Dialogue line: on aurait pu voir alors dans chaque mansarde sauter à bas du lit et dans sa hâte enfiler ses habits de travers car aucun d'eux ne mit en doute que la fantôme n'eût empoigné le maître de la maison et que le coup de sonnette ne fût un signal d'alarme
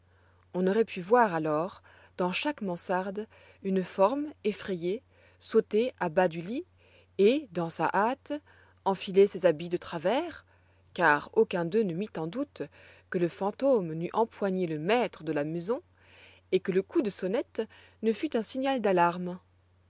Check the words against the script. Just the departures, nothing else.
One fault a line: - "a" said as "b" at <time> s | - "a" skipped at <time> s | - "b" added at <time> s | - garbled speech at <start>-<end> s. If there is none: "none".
- "une forme effrayée" added at 3.6 s
- "la" said as "le" at 13.2 s